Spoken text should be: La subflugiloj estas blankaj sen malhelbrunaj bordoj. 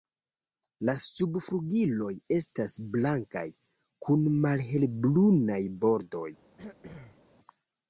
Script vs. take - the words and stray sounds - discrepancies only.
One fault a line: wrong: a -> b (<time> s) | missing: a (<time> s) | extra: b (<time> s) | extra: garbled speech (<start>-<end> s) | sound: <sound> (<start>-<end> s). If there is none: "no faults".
wrong: sen -> kun (4.1 s)
sound: throat clearing (6.6-7.2 s)